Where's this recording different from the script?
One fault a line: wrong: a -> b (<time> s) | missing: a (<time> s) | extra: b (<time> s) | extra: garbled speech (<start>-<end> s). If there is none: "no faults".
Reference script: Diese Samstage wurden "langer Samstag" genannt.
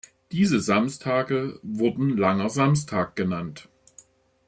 no faults